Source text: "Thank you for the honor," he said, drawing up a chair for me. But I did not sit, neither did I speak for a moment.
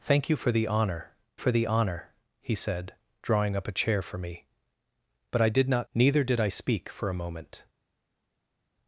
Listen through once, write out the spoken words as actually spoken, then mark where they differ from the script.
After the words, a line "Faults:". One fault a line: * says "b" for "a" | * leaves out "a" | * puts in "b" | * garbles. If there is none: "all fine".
"Thank you for the honor for the honor," he said, drawing up a chair for me. But I did not neither did I speak for a moment.
Faults:
* puts in "for the honor"
* leaves out "sit"